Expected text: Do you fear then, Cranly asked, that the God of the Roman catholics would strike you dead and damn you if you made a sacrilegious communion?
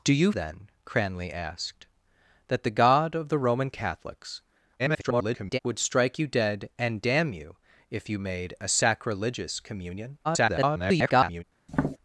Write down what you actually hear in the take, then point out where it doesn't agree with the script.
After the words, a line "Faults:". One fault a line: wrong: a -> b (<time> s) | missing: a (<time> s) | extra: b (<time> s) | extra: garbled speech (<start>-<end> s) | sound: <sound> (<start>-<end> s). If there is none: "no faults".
Do you then, Cranly asked, that the God of the Roman catholics [garbled] would strike you dead and damn you if you made a sacrilegious communion? [garbled]
Faults:
missing: fear (0.3 s)
extra: garbled speech (4.8-5.6 s)
extra: garbled speech (10.2-11.4 s)
sound: tap (11.7-12.0 s)